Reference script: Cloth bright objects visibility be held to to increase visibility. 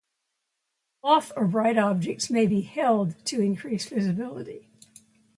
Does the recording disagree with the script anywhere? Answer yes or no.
yes